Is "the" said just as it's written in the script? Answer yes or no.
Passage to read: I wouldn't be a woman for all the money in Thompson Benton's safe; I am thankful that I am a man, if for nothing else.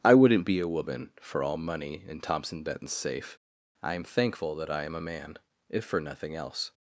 no